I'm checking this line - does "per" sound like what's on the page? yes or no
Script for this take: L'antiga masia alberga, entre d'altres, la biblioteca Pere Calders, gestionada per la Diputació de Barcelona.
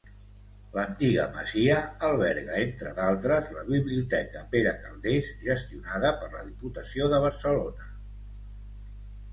yes